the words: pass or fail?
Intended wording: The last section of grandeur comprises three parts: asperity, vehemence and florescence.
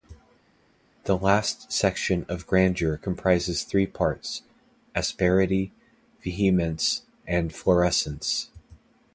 pass